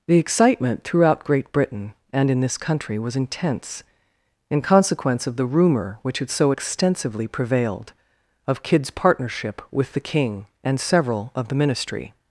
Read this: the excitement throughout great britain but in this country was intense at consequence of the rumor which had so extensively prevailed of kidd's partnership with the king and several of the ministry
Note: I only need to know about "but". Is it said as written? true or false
false